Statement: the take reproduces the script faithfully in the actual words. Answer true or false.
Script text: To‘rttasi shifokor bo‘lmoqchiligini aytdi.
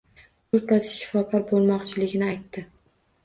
true